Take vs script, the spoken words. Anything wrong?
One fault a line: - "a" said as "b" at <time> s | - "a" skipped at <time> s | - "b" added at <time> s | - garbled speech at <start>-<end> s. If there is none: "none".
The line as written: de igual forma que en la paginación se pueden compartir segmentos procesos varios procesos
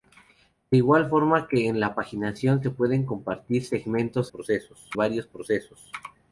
none